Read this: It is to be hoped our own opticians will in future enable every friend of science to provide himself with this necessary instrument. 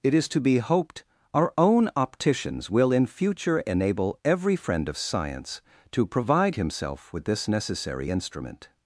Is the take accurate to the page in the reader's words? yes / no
yes